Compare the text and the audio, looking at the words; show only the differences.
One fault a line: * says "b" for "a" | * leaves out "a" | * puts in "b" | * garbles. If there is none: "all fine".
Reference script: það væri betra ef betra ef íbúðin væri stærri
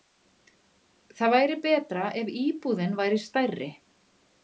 * leaves out "betra ef"